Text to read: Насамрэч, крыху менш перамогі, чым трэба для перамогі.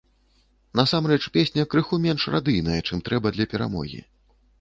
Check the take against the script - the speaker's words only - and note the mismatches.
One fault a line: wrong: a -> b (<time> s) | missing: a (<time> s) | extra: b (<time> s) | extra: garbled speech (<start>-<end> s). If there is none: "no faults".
extra: песня (1.4 s)
wrong: перамогі -> радыйная (2.4 s)